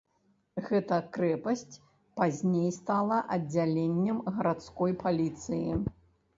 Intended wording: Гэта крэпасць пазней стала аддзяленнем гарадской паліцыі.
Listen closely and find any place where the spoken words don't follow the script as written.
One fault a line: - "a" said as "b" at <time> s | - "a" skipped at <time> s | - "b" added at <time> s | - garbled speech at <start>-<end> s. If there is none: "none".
none